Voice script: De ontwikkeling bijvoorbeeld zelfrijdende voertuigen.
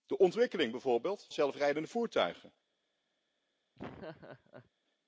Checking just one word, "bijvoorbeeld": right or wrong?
right